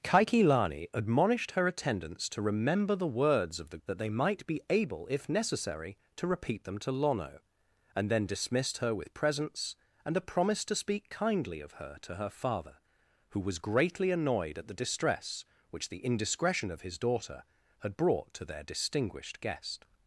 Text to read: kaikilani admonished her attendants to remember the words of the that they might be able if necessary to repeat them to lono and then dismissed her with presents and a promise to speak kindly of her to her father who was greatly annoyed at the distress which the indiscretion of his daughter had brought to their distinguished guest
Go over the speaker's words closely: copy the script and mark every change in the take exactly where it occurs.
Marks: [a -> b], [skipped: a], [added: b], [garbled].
kaikilani admonished her attendants to remember the words of the that they might be able if necessary to repeat them to lono and then dismissed her with presents and a promise to speak kindly of her to her father who was greatly annoyed at the distress which the indiscretion of his daughter had brought to their distinguished guest